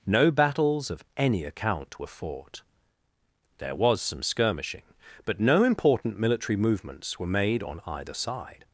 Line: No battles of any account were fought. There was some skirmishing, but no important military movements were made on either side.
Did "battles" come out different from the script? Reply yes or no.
no